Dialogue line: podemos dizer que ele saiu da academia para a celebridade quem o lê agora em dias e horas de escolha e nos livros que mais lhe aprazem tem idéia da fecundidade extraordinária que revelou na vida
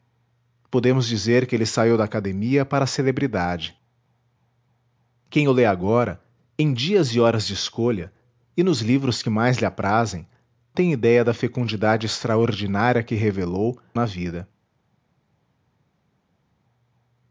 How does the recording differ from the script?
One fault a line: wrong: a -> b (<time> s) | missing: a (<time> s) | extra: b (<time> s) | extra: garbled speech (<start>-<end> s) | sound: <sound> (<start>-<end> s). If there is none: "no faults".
no faults